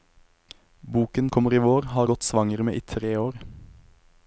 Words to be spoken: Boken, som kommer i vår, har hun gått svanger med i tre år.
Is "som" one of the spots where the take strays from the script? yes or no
yes